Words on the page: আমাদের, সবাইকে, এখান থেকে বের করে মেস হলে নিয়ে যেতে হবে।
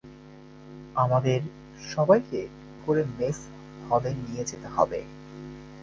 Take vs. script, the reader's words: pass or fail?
fail